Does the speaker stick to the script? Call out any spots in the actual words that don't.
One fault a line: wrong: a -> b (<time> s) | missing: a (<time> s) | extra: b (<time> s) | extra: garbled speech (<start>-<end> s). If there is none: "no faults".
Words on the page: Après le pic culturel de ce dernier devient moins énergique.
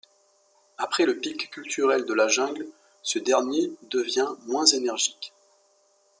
extra: la jungle (2.1 s)